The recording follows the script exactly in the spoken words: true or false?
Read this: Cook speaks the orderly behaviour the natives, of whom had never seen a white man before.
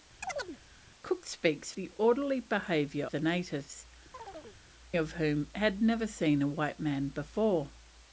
true